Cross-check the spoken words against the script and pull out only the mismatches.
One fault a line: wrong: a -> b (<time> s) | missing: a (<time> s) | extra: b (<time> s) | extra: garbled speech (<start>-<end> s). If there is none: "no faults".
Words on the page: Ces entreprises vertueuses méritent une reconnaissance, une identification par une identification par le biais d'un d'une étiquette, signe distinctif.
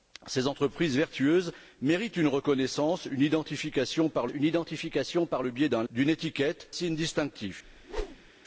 no faults